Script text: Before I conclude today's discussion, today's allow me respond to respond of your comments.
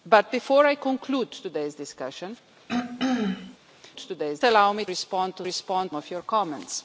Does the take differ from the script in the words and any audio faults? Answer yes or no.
yes